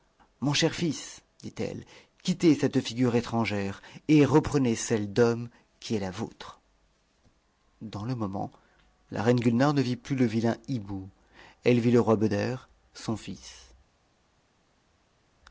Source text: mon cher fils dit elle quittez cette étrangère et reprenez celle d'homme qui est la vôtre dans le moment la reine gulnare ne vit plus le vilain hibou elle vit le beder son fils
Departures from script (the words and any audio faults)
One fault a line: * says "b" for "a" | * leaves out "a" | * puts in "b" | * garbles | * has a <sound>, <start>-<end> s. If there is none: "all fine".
* puts in "figure"
* puts in "roi"